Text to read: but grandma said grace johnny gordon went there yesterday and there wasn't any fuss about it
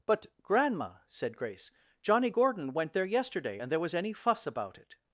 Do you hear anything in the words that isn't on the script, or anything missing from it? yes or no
yes